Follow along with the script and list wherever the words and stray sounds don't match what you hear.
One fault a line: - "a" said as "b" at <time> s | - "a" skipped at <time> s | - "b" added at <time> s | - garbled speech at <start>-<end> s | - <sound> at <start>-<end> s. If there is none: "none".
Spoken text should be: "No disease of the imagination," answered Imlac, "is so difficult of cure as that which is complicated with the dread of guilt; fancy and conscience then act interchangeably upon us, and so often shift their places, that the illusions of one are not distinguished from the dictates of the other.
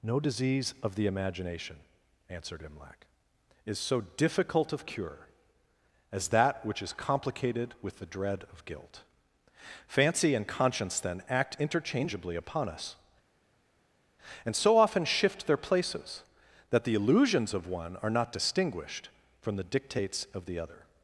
none